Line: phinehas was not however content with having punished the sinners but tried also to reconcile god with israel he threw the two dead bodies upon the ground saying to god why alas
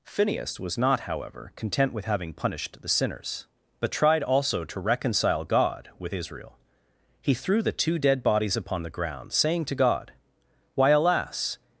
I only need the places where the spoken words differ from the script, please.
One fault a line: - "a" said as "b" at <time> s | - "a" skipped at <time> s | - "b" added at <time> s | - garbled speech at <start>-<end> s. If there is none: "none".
none